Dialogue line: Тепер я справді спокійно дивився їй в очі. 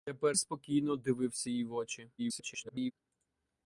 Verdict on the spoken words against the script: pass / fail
fail